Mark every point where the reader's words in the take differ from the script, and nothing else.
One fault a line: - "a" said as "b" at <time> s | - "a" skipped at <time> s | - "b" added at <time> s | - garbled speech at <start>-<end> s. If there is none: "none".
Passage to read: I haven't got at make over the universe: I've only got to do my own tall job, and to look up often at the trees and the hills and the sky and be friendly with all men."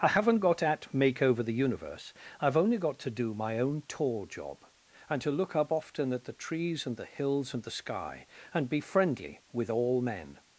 none